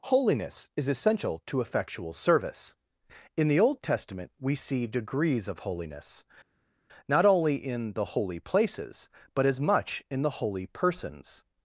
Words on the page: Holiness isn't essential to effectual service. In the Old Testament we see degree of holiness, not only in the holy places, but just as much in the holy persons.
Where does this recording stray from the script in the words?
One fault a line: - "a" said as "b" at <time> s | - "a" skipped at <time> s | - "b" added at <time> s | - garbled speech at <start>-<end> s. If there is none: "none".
- "isn't" said as "is" at 0.8 s
- "degree" said as "degrees" at 4.9 s
- "just" skipped at 9.5 s